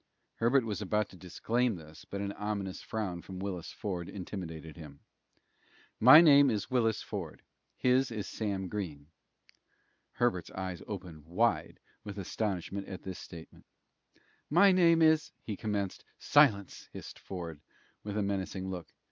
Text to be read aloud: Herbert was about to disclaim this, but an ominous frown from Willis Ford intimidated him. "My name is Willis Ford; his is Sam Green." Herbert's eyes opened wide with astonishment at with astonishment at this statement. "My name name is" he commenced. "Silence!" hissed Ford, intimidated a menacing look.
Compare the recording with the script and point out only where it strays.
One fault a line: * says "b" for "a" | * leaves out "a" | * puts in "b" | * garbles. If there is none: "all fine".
* leaves out "with astonishment at"
* leaves out "name"
* says "with" for "intimidated"